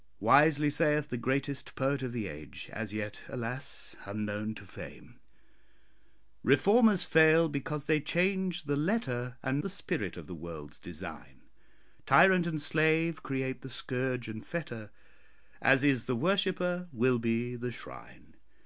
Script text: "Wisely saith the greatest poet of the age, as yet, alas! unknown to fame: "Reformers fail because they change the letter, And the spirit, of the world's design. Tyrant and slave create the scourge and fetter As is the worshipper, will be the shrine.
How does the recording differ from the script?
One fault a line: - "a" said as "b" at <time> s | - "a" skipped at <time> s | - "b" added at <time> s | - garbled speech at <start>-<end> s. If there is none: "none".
none